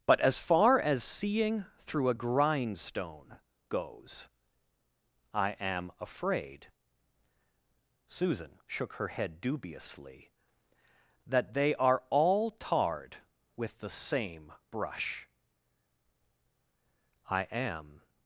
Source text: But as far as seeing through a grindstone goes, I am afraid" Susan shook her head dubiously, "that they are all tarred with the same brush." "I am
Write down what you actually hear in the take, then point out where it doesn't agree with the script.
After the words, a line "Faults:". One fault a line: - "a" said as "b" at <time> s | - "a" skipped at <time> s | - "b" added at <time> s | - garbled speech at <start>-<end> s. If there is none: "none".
But as far as seeing through a grindstone goes, I am afraid" Susan shook her head dubiously, "that they are all tarred with the same brush." "I am
Faults:
none